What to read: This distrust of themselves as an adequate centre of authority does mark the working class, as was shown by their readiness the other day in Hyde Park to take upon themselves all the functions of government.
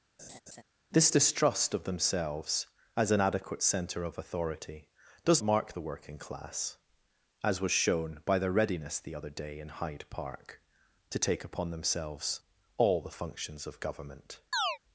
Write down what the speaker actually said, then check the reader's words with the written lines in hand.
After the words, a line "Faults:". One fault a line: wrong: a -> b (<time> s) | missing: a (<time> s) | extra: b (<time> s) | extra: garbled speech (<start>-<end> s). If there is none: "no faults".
This distrust of themselves as an adequate centre of authority does mark the working class, as was shown by their readiness the other day in Hyde Park to take upon themselves all the functions of government.
Faults:
no faults